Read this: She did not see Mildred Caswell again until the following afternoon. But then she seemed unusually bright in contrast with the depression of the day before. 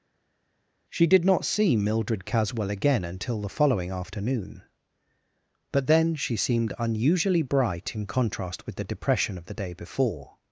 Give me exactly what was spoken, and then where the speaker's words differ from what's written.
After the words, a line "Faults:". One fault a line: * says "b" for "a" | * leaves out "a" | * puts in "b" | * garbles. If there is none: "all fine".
She did not see Mildred Caswell again until the following afternoon. But then she seemed unusually bright in contrast with the depression of the day before.
Faults:
all fine